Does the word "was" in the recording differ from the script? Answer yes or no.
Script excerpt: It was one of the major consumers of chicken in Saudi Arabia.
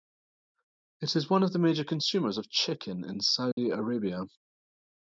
yes